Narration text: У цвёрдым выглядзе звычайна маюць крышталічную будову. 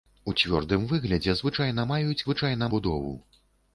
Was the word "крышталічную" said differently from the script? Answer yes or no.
yes